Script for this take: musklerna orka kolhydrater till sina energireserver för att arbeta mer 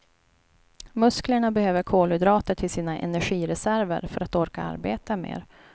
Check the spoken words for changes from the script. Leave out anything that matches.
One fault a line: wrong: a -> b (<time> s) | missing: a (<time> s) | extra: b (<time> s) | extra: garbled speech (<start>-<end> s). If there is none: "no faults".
wrong: orka -> behöver (1.5 s)
extra: orka (4.3 s)